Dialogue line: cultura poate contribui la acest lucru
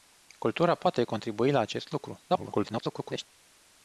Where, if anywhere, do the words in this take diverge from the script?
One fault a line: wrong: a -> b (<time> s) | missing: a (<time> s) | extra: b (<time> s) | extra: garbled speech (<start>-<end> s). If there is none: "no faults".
extra: garbled speech (2.3-3.2 s)